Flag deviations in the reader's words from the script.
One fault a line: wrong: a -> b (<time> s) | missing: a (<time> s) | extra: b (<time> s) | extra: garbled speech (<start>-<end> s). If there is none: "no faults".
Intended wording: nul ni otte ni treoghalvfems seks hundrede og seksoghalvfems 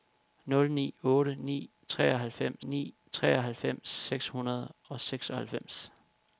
extra: ni treoghalvfems (2.6 s)